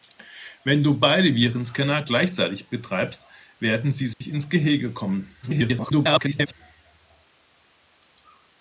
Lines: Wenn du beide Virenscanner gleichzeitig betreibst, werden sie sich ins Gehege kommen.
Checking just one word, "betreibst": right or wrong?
right